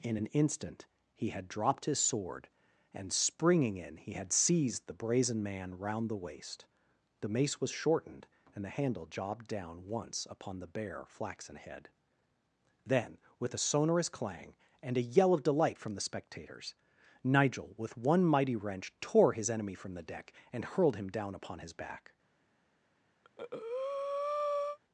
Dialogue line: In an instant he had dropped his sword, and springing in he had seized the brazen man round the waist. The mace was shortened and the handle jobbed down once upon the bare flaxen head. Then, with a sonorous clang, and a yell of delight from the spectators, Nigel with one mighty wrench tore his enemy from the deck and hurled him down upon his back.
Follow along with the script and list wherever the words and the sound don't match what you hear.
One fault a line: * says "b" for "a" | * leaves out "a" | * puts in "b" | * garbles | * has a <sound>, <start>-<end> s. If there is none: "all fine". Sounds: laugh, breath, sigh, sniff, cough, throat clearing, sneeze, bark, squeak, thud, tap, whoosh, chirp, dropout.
* has a breath, 23.2-24.8 s